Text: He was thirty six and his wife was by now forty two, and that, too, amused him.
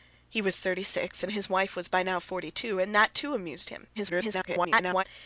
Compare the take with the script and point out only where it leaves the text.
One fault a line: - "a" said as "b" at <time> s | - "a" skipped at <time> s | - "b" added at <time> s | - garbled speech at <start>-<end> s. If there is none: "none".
- garbled speech at 4.0-5.0 s